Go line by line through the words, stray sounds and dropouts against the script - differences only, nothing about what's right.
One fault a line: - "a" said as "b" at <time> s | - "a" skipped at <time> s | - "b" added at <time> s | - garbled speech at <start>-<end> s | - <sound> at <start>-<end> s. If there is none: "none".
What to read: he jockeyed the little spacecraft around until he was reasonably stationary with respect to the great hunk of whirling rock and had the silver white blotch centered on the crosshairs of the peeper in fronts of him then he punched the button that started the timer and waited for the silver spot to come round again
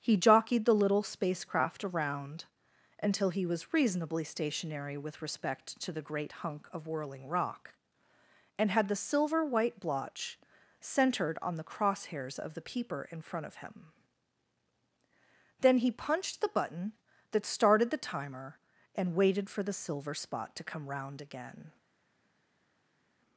- "fronts" said as "front" at 13.2 s